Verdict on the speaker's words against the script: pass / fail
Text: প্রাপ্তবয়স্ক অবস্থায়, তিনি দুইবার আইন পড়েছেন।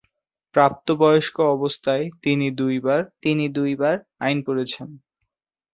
fail